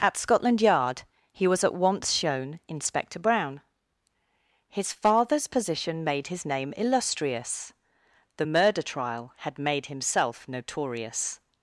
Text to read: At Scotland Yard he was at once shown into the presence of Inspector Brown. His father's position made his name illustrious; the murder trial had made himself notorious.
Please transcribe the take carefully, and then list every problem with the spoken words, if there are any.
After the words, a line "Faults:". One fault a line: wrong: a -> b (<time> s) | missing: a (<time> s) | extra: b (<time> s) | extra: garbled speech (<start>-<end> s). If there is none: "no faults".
At Scotland Yard he was at once shown Inspector Brown. His father's position made his name illustrious; the murder trial had made himself notorious.
Faults:
missing: into the presence of (2.6 s)